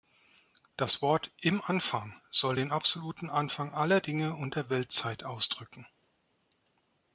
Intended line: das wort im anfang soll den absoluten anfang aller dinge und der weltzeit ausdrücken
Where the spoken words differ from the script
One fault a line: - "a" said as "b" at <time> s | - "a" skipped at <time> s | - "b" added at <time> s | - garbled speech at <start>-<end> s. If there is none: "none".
none